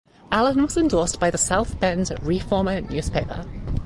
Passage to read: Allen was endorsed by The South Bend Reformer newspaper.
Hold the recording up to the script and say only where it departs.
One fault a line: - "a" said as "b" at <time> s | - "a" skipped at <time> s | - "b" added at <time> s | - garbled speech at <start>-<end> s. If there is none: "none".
none